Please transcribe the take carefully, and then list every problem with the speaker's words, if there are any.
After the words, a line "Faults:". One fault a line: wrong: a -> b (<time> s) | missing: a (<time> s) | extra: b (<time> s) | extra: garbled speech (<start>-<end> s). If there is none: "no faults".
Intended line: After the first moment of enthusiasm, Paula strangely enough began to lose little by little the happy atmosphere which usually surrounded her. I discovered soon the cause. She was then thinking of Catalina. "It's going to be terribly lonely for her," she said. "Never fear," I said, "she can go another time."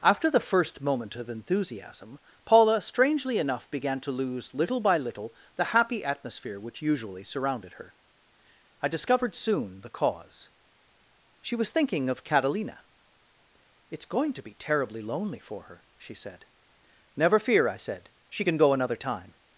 After the first moment of enthusiasm, Paula strangely enough began to lose little by little the happy atmosphere which usually surrounded her. I discovered soon the cause. She was thinking of Catalina. "It's going to be terribly lonely for her," she said. "Never fear," I said, "she can go another time."
Faults:
missing: then (11.7 s)